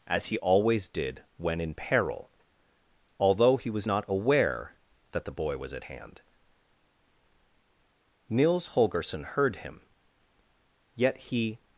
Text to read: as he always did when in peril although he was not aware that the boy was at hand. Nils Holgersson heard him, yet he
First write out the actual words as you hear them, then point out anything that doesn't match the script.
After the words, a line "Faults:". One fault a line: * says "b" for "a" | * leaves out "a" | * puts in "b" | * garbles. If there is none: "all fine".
as he always did when in peril although he was not aware that the boy was at hand. Nils Holgersson heard him, yet he
Faults:
all fine